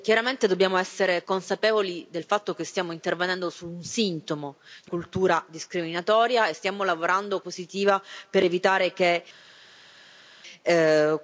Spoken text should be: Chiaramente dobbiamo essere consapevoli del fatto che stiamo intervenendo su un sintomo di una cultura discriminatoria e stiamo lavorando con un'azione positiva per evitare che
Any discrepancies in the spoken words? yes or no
yes